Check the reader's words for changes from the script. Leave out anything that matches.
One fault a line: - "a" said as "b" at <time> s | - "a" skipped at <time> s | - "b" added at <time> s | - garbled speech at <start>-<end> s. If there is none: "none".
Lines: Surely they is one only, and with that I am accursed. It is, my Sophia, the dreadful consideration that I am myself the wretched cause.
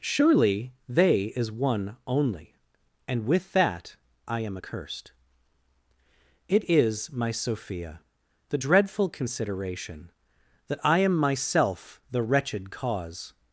none